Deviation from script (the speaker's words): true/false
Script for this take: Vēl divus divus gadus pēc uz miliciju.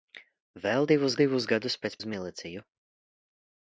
false